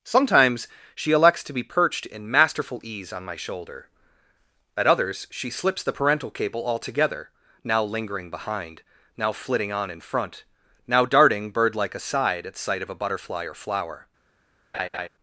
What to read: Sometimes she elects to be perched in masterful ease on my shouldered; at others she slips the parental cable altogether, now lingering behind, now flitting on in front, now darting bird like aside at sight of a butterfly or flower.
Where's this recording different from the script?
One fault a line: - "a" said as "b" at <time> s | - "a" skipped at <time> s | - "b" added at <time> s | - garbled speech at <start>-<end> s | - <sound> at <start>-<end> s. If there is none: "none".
- "shouldered" said as "shoulder" at 3.4 s
- laugh at 14.7-15.1 s